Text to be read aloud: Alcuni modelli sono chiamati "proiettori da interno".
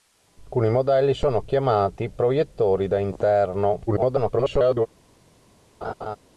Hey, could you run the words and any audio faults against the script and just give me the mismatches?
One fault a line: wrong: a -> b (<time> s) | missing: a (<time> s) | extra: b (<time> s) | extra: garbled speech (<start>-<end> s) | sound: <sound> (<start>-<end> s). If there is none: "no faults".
extra: garbled speech (3.9-4.9 s)
sound: laugh (5.8-6.2 s)